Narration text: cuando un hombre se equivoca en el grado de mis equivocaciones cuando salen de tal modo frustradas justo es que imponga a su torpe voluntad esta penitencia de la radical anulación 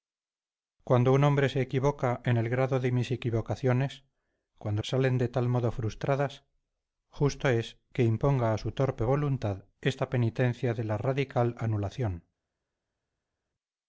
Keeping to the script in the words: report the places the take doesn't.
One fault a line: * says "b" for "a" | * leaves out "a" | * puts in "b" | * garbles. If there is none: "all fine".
all fine